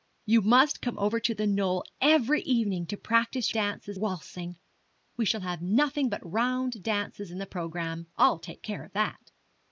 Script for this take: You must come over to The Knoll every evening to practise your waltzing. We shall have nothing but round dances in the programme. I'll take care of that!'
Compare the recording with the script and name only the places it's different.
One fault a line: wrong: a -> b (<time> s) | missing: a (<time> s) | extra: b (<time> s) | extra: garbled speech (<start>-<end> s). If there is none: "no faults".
wrong: your -> dances (3.5 s)